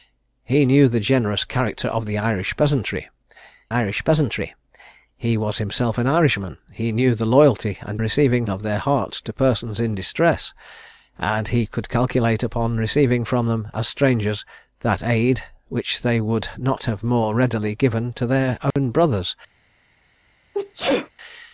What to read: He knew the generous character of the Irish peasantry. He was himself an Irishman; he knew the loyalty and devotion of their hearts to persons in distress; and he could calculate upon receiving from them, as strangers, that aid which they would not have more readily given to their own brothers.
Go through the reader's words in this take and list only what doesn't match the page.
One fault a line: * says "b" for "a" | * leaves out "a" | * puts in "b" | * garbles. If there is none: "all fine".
* puts in "Irish peasantry"
* says "receiving" for "devotion"